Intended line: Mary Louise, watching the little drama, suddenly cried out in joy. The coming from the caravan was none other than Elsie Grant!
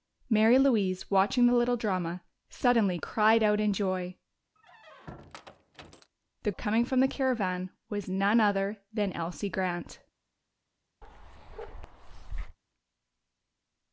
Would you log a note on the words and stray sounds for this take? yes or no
yes